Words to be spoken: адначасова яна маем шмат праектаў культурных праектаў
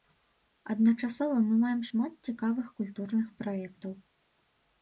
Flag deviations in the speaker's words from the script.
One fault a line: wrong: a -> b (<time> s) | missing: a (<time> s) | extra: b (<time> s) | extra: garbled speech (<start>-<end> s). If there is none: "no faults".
wrong: яна -> мы (1.5 s)
wrong: праектаў -> цікавых (2.3 s)